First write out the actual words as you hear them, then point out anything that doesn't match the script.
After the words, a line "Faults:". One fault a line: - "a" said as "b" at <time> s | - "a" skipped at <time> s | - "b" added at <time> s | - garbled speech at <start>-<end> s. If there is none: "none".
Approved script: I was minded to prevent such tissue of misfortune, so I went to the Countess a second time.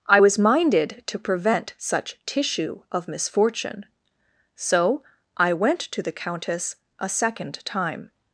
I was minded to prevent such tissue of misfortune, so I went to the Countess a second time.
Faults:
none